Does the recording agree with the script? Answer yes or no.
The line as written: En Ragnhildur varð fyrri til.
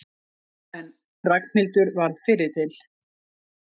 yes